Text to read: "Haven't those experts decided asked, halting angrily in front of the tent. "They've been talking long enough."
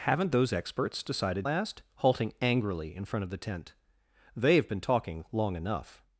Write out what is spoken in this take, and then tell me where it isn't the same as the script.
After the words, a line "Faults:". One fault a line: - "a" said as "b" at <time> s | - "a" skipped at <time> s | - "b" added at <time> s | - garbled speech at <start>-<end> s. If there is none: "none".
"Haven't those experts decided asked, halting angrily in front of the tent. "They've been talking long enough."
Faults:
none